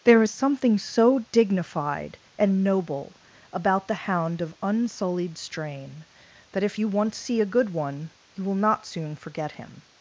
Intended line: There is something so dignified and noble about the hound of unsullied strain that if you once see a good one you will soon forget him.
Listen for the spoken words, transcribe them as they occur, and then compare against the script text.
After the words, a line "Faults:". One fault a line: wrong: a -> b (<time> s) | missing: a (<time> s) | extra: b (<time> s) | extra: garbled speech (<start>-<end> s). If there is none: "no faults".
There is something so dignified and noble about the hound of unsullied strain that if you once see a good one you will not soon forget him.
Faults:
extra: not (8.5 s)